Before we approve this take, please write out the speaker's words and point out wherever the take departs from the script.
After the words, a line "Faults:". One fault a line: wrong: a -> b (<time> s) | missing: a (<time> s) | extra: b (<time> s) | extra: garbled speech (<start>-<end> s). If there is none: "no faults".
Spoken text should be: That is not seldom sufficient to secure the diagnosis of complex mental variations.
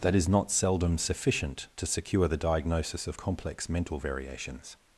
That is not seldom sufficient to secure the diagnosis of complex mental variations.
Faults:
no faults